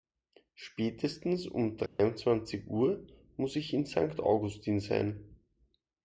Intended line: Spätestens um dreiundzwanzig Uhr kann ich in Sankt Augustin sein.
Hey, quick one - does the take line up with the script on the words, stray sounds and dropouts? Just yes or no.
no